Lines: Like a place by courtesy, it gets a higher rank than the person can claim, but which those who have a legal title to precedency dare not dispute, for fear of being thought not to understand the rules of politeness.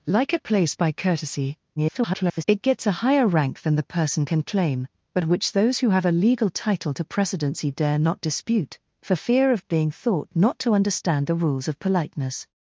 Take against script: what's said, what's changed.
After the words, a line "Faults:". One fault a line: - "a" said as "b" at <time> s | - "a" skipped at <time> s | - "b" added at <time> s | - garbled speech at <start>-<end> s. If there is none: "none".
Like a place by courtesy, [garbled] it gets a higher rank than the person can claim, but which those who have a legal title to precedency dare not dispute, for fear of being thought not to understand the rules of politeness.
Faults:
- garbled speech at 1.8-2.4 s